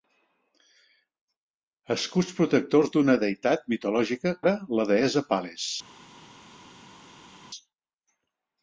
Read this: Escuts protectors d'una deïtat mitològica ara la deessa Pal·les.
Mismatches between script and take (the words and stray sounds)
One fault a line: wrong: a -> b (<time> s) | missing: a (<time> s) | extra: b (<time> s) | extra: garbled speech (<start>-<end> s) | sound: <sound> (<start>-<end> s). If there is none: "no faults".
no faults